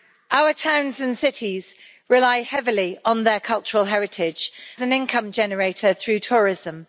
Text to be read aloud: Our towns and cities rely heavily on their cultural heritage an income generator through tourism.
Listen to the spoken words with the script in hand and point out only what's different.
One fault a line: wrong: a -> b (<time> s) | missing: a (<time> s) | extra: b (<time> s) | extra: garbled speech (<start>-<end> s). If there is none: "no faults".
no faults